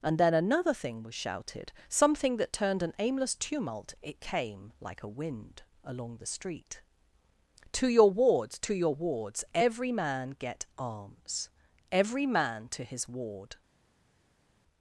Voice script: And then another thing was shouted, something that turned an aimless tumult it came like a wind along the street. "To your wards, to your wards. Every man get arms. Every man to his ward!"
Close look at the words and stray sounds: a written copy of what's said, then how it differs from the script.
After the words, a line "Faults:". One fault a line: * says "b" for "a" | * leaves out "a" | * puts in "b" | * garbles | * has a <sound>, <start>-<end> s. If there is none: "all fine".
And then another thing was shouted, something that turned an aimless tumult it came like a wind along the street. "To your wards, to your wards. Every man get arms. Every man to his ward!"
Faults:
all fine